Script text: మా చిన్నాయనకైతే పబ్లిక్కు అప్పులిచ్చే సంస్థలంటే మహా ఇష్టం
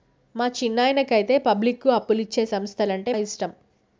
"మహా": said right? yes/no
no